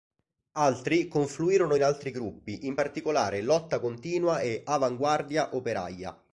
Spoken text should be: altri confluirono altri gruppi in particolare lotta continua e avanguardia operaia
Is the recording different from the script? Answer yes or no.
yes